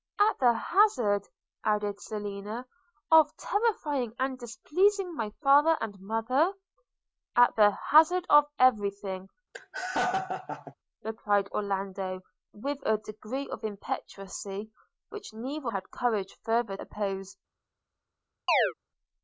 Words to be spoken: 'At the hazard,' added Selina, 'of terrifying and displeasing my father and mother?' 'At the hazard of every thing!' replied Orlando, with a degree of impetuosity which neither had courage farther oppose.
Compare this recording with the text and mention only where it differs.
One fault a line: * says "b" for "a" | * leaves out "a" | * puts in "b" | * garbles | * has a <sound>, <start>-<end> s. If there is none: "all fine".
* has a laugh, 9.5-10.7 s
* has a chirp, 18.5-18.7 s